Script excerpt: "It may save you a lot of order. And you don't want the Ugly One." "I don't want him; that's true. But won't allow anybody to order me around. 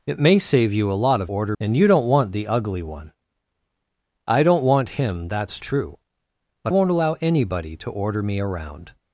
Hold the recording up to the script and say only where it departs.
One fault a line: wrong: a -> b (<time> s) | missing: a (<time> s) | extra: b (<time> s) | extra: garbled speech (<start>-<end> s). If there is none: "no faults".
no faults